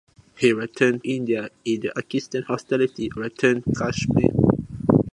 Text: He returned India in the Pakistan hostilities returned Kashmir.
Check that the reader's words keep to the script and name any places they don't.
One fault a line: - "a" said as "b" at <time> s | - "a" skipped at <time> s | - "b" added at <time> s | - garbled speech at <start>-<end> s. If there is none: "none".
none